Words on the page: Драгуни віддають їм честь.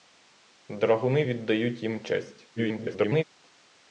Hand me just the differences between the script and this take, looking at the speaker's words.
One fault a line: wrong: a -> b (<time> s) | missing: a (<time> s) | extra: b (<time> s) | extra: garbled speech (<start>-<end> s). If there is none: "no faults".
extra: garbled speech (2.6-3.2 s)